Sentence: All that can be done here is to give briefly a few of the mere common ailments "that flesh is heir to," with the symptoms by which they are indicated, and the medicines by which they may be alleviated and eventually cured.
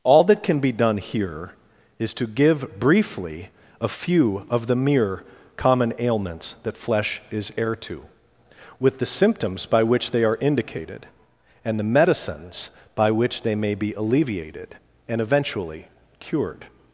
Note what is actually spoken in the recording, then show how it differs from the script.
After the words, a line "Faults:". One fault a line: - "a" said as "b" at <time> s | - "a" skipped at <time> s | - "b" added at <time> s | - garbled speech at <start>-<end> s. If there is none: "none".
All that can be done here is to give briefly a few of the mere common ailments "that flesh is heir to," with the symptoms by which they are indicated, and the medicines by which they may be alleviated and eventually cured.
Faults:
none